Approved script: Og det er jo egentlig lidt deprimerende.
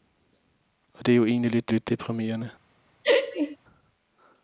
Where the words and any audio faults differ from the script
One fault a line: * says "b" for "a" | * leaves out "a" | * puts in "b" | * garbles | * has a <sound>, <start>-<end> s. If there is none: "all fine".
* puts in "lidt"
* has a laugh, 3.0-3.6 s